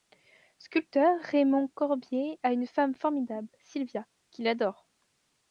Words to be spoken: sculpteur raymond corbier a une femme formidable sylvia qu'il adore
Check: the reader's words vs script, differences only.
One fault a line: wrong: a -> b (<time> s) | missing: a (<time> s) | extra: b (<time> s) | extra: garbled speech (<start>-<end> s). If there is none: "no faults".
no faults